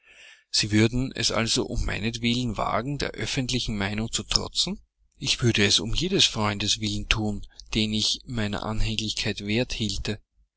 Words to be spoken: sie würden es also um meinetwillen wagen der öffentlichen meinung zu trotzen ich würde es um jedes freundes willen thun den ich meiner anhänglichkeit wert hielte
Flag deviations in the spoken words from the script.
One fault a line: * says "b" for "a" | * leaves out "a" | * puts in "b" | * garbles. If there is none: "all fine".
all fine